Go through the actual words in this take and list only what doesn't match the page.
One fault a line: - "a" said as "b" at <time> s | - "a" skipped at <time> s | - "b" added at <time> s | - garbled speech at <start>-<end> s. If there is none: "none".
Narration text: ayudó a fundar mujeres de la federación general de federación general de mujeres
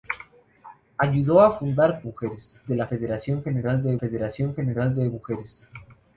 none